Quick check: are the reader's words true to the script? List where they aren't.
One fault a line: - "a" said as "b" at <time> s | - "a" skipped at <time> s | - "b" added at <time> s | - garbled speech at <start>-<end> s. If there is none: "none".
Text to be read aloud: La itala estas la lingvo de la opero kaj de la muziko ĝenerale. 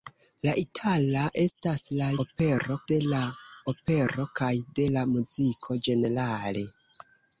- "lingvo" said as "opero" at 2.3 s